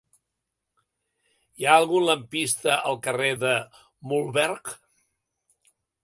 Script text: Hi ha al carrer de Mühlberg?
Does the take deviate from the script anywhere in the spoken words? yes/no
yes